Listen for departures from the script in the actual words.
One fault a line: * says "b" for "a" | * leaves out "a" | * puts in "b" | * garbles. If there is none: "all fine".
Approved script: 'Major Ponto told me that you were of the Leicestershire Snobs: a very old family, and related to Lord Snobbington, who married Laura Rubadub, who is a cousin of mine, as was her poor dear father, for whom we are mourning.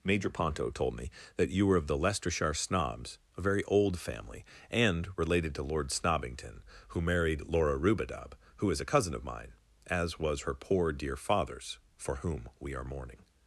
* says "fathers" for "father"